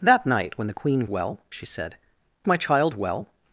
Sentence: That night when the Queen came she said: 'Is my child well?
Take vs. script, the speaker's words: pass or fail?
fail